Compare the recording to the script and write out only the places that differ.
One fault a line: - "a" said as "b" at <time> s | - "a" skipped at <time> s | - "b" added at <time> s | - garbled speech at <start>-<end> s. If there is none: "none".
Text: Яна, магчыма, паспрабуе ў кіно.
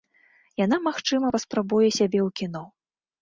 - "сябе" added at 2.0 s